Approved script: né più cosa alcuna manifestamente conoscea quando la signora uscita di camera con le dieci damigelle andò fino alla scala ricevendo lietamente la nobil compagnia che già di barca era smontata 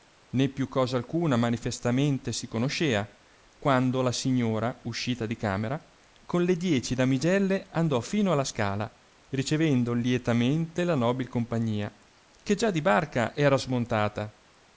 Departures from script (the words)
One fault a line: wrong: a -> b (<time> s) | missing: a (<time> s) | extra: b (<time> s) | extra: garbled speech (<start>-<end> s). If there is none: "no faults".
extra: si (2.3 s)